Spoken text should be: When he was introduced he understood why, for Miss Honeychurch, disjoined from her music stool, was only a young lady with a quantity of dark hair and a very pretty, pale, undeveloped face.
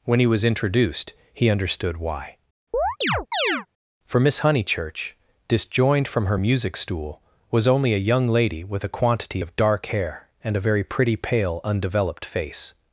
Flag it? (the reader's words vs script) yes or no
no